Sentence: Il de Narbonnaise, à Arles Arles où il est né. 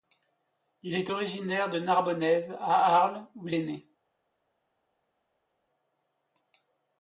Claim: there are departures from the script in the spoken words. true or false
true